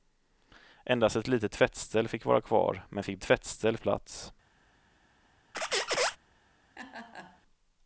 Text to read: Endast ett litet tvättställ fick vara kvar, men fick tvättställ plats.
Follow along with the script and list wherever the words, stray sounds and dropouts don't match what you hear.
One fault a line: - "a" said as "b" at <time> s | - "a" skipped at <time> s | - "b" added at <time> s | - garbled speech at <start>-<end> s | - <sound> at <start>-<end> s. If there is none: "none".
- squeak at 5.5-6.2 s
- laugh at 6.8-7.4 s